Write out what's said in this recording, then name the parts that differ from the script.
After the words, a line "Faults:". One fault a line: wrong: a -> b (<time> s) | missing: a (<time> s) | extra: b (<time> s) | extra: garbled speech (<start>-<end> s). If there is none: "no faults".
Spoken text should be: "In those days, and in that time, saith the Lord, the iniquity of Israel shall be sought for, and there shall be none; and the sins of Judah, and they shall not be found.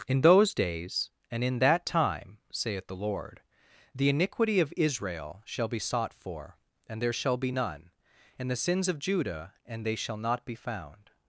"In those days, and in that time, saith the Lord, the iniquity of Israel shall be sought for, and there shall be none; and the sins of Judah, and they shall not be found.
Faults:
no faults